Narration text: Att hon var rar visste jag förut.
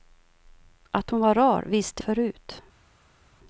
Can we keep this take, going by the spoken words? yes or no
no